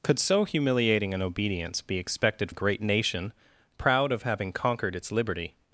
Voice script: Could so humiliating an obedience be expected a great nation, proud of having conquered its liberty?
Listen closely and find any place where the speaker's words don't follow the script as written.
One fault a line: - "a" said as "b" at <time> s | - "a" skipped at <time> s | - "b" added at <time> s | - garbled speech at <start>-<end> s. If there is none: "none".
none